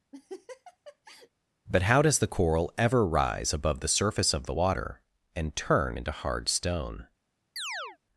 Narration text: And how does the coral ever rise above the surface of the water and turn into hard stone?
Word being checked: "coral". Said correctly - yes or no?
yes